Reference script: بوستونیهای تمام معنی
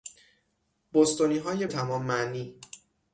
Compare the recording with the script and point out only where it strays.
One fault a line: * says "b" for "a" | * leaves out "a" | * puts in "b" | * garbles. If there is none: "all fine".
all fine